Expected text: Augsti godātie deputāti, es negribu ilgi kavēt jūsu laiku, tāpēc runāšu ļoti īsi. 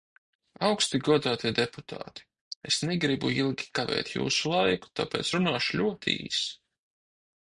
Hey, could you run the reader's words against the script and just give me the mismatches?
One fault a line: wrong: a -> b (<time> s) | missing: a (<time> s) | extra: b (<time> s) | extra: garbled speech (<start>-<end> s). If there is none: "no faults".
no faults